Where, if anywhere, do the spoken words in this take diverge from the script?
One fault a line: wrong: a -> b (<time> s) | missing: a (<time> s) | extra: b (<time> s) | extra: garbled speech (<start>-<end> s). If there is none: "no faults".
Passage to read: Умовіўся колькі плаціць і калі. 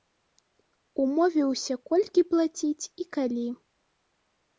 no faults